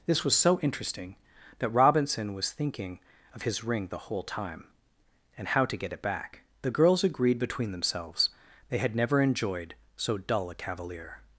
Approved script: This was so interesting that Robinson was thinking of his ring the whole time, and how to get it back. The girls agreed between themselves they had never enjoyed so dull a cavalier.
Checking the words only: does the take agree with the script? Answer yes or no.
yes